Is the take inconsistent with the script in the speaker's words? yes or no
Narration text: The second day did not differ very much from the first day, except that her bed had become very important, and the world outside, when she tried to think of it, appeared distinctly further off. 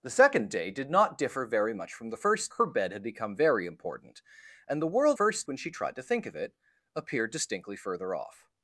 yes